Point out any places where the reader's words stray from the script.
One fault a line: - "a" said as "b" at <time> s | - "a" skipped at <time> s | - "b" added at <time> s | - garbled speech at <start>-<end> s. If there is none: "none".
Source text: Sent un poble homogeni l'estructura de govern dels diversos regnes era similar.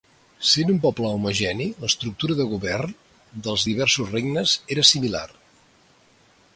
none